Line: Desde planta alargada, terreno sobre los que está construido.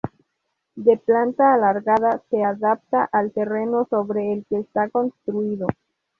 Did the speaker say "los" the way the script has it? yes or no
no